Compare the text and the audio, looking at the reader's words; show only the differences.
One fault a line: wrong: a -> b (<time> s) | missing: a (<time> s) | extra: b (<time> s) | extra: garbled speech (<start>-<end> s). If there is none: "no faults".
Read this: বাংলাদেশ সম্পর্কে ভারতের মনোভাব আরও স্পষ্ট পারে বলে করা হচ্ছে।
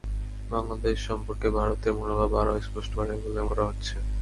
no faults